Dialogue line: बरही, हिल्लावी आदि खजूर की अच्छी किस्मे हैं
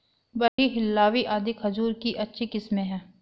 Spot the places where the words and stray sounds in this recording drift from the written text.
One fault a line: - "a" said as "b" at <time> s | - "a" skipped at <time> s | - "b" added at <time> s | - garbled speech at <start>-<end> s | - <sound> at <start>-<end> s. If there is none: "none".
- dropout at 0.5-0.6 s